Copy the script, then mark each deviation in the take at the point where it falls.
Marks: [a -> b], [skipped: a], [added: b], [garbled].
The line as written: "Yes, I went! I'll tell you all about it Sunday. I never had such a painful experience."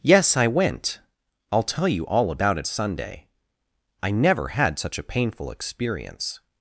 "Yes, I went! I'll tell you all about it Sunday. I never had such a painful experience."